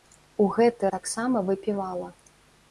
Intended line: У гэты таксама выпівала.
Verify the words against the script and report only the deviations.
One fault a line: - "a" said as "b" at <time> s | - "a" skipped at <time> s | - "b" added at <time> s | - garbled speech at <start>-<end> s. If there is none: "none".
none